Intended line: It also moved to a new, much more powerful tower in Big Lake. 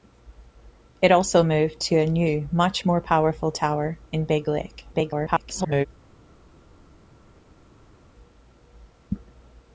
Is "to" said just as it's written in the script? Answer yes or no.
yes